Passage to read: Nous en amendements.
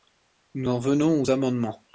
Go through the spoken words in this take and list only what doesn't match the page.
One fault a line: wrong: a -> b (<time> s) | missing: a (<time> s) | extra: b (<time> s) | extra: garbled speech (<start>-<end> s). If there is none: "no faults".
extra: venons aux (0.8 s)